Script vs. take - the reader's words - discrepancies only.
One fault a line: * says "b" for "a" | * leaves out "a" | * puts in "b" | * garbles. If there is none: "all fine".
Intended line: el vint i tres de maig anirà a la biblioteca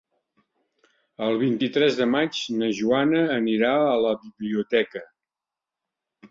* puts in "na joana"